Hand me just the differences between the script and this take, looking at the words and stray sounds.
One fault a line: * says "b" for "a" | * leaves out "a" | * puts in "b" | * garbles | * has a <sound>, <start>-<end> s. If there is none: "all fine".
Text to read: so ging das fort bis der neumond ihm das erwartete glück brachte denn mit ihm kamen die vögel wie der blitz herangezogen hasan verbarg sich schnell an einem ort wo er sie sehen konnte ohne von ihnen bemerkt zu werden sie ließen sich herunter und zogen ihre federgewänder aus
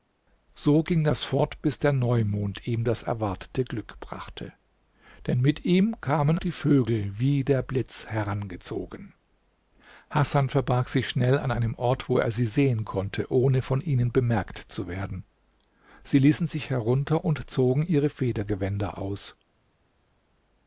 all fine